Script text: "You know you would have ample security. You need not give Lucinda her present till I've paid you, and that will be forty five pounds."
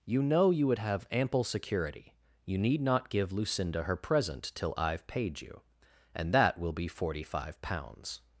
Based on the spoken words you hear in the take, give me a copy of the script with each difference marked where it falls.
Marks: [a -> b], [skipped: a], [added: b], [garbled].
"You know you would have ample security. You need not give Lucinda her present till I've paid you, and that will be forty five pounds."